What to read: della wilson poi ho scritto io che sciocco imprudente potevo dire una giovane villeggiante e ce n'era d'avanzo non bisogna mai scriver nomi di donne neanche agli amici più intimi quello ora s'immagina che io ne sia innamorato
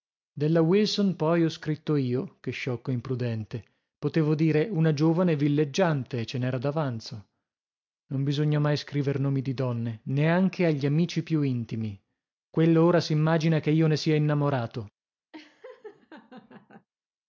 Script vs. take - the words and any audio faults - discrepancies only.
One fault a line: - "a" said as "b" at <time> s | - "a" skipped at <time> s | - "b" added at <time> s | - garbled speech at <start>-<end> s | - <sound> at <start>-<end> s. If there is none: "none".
- laugh at 15.3-16.9 s